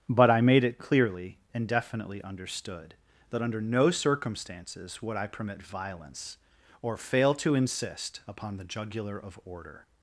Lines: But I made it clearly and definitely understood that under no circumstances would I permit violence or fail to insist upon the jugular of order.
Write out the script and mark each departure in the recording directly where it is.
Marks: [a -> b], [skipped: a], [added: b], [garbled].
But I made it clearly and definitely understood that under no circumstances would I permit violence or fail to insist upon the jugular of order.